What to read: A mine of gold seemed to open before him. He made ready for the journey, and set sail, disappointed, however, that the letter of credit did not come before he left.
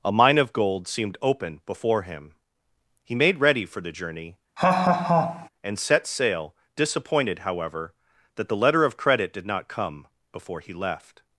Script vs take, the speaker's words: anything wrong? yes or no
yes